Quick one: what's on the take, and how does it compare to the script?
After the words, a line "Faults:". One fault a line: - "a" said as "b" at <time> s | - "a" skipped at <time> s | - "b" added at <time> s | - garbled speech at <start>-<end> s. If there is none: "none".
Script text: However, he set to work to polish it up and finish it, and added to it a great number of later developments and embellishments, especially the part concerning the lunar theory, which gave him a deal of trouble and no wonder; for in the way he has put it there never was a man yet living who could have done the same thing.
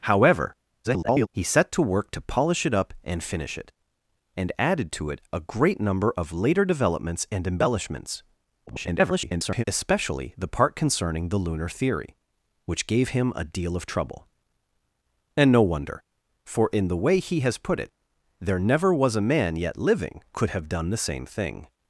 However, [garbled] he set to work to polish it up and finish it, and added to it a great number of later developments and embellishments, [garbled] especially the part concerning the lunar theory, which gave him a deal of trouble and no wonder; for in the way he has put it there never was a man yet living could have done the same thing.
Faults:
- garbled speech at 0.8-1.3 s
- garbled speech at 8.7-9.6 s
- "who" skipped at 20.2 s